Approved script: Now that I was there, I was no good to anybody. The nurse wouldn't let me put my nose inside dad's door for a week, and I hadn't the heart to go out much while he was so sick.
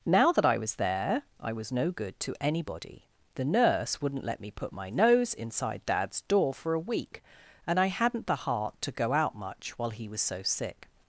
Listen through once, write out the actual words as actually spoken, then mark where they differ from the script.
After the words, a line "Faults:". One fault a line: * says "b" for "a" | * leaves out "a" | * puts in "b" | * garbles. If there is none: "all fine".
Now that I was there, I was no good to anybody. The nurse wouldn't let me put my nose inside dad's door for a week, and I hadn't the heart to go out much while he was so sick.
Faults:
all fine